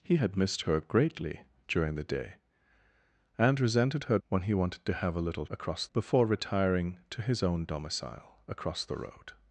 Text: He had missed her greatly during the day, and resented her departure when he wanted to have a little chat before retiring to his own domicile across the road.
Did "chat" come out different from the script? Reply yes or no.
yes